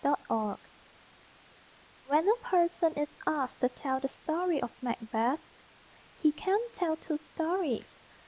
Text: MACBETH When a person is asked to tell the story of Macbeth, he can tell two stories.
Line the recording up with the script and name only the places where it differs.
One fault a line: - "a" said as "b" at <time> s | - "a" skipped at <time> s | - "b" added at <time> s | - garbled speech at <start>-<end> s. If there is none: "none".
none